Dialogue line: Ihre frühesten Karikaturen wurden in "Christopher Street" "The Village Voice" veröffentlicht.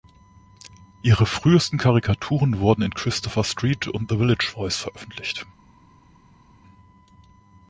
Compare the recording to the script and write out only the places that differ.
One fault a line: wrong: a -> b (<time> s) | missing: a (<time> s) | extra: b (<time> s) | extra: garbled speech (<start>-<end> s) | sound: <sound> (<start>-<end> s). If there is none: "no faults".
extra: und (3.9 s)